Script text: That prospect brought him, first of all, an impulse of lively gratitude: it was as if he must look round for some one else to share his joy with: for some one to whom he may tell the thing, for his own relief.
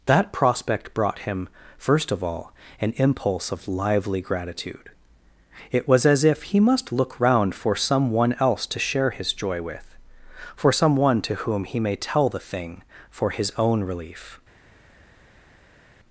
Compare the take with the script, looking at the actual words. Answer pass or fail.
pass